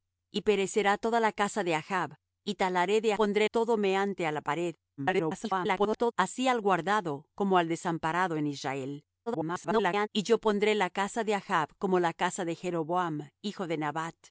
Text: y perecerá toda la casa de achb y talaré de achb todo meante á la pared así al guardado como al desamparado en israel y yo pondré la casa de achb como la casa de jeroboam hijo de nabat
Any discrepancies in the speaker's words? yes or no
yes